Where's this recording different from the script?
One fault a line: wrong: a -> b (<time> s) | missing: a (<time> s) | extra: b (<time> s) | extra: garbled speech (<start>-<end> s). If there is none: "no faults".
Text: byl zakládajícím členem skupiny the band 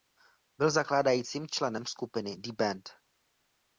no faults